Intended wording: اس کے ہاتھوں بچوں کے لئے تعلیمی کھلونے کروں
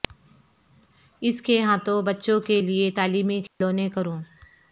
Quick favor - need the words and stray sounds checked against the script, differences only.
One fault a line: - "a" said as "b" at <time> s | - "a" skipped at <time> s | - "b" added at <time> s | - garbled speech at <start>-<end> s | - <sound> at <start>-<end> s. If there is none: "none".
- dropout at 3.5-3.6 s